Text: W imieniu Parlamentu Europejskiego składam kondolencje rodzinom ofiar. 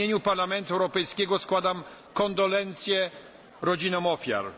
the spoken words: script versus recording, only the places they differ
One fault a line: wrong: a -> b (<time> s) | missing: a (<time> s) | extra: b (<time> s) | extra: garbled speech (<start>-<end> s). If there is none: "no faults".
no faults